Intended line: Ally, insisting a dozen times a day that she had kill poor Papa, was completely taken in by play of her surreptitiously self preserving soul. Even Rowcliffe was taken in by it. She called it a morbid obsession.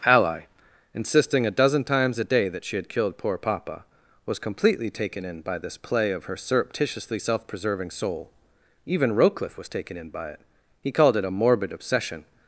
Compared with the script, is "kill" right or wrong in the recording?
wrong